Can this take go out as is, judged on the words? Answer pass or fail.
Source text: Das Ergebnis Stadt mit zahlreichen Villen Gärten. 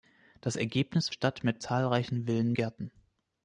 pass